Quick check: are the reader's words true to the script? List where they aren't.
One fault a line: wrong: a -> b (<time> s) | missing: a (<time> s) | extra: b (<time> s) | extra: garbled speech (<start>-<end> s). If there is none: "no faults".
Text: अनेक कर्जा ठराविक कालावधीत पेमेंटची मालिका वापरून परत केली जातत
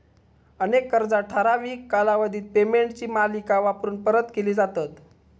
no faults